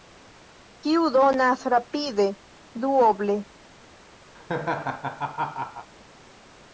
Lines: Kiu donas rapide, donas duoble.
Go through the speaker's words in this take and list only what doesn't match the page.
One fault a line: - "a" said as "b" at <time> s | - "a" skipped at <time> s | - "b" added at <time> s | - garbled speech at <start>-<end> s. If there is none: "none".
- "donas" skipped at 2.2 s